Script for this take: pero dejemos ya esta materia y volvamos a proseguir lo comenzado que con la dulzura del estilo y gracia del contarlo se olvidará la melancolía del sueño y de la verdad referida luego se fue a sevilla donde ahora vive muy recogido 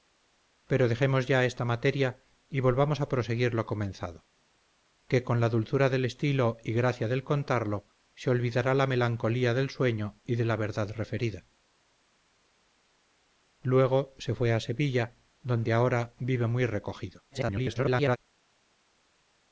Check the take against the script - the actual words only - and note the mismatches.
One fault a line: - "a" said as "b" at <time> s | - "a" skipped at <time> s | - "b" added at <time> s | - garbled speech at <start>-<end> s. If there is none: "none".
- garbled speech at 17.3-18.2 s